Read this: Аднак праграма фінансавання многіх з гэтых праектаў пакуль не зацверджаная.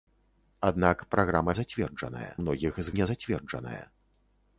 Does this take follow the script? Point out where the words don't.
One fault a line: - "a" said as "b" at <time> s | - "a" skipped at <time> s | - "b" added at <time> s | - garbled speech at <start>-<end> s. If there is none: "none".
- "фінансавання" said as "зацверджаная" at 1.6 s
- "гэтых праектаў пакуль" skipped at 2.9 s